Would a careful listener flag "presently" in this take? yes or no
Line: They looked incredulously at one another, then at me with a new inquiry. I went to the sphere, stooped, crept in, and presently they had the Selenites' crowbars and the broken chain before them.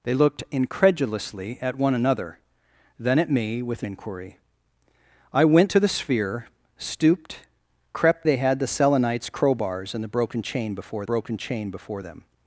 yes